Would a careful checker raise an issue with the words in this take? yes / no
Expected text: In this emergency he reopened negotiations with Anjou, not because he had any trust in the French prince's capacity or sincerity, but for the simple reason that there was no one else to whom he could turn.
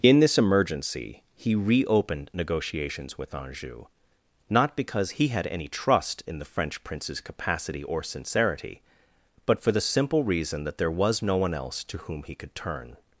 no